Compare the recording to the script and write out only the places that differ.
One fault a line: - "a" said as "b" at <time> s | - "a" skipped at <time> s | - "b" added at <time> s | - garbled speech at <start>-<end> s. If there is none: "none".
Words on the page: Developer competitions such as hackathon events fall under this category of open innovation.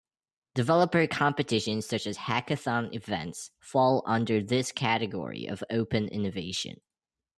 none